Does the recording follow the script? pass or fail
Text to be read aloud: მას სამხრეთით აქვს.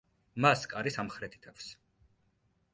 fail